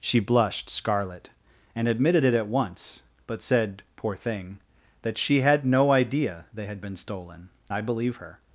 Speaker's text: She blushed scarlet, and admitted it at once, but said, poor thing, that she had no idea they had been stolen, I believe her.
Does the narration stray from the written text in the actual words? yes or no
no